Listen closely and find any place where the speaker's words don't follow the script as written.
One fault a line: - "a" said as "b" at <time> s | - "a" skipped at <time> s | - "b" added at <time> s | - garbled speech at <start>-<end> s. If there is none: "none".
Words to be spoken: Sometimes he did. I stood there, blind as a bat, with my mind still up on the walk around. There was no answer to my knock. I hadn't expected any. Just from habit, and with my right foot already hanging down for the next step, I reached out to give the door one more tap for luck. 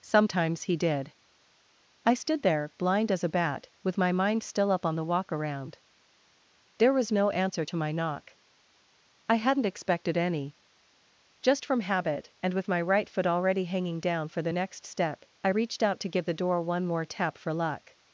none